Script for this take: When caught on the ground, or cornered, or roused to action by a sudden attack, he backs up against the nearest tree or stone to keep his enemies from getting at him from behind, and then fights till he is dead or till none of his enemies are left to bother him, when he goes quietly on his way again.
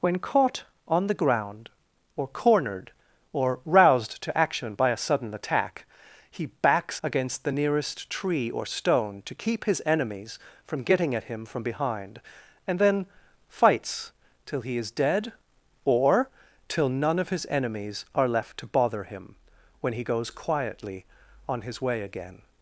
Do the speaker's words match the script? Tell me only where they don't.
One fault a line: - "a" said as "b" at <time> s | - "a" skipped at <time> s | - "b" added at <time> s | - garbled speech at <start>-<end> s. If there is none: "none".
- "up" skipped at 7.0 s